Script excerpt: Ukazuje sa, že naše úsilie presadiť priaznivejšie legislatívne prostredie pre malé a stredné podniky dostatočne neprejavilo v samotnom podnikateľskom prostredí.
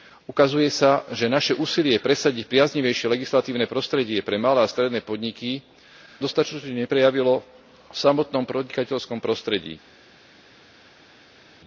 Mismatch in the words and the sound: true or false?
false